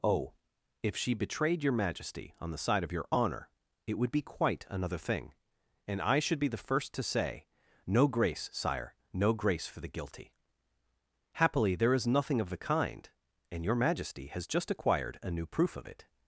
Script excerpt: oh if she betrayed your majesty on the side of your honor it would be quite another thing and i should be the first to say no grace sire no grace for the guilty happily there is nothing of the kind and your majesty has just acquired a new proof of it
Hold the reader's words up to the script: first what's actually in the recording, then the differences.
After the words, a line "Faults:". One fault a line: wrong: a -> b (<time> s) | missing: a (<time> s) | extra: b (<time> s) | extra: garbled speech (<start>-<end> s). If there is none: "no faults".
oh if she betrayed your majesty on the side of your honor it would be quite another thing and i should be the first to say no grace sire no grace for the guilty happily there is nothing of the kind and your majesty has just acquired a new proof of it
Faults:
no faults